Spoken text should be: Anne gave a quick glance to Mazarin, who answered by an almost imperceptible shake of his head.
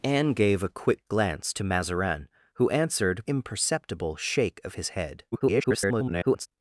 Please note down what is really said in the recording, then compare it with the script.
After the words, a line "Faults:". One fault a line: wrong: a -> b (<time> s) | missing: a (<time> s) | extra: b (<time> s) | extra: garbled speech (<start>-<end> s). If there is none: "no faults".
Anne gave a quick glance to Mazarin, who answered imperceptible shake of his head. [garbled]
Faults:
missing: by an almost (3.3 s)
extra: garbled speech (5.3-6.5 s)